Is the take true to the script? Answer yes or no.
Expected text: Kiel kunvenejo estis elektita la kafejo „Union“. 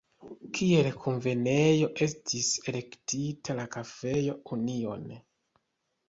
yes